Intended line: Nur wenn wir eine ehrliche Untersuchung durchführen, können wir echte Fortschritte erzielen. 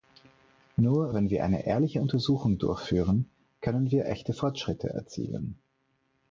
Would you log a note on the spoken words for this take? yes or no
no